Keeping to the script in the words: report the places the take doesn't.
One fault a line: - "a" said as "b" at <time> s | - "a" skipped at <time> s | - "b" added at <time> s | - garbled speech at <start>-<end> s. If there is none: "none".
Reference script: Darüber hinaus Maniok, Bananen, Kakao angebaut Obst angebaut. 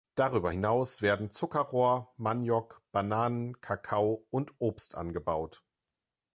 - "werden Zuckerrohr" added at 1.0 s
- "angebaut" said as "und" at 4.3 s